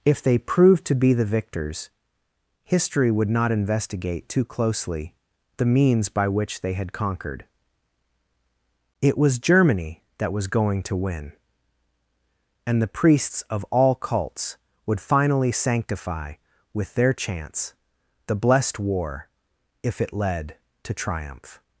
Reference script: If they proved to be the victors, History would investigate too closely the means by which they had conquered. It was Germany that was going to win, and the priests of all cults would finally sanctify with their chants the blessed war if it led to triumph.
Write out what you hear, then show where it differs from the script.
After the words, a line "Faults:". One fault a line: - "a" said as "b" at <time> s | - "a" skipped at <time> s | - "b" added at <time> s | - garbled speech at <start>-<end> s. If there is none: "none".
If they proved to be the victors, History would not investigate too closely the means by which they had conquered. It was Germany that was going to win, and the priests of all cults would finally sanctify with their chants the blessed war if it led to triumph.
Faults:
- "not" added at 3.3 s